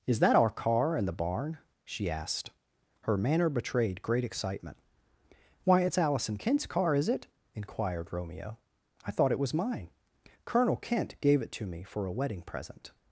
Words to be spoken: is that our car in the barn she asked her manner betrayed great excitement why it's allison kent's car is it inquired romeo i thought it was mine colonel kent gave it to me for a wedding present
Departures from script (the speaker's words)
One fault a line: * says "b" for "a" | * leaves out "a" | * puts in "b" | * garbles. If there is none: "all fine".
all fine